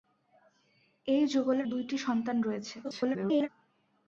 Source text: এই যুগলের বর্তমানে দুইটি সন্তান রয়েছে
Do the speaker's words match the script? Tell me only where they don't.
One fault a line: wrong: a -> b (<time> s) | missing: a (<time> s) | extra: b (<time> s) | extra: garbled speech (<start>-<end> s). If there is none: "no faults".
missing: বর্তমানে (1.7 s)
extra: garbled speech (2.8-3.5 s)